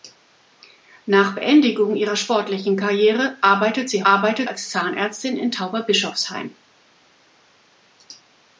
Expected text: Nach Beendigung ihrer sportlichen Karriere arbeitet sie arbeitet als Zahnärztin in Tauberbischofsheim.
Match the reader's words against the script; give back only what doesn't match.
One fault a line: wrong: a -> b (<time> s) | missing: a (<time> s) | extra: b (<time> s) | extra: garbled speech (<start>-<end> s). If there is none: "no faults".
no faults